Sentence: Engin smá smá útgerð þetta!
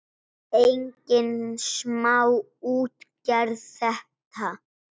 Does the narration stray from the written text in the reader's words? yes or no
yes